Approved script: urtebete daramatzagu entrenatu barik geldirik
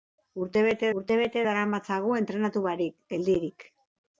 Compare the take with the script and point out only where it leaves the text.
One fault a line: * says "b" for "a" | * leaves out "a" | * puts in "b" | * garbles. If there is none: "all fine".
* puts in "urtebete"